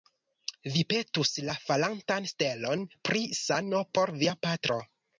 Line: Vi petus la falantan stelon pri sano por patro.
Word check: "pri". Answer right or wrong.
right